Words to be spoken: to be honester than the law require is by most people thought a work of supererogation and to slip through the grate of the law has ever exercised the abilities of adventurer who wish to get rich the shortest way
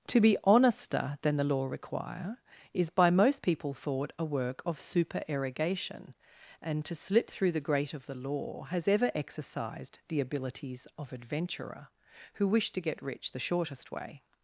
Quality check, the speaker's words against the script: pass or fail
pass